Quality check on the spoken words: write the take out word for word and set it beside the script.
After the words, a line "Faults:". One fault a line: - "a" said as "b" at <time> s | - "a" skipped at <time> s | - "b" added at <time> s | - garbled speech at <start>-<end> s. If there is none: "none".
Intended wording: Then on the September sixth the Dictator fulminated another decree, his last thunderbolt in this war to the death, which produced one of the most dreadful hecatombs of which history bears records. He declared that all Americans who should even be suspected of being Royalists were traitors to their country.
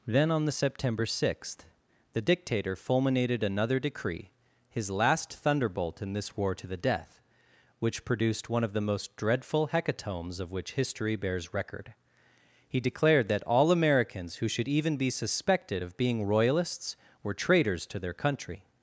Then on the September sixth the Dictator fulminated another decree, his last thunderbolt in this war to the death, which produced one of the most dreadful hecatombs of which history bears record. He declared that all Americans who should even be suspected of being Royalists were traitors to their country.
Faults:
- "records" said as "record" at 11.5 s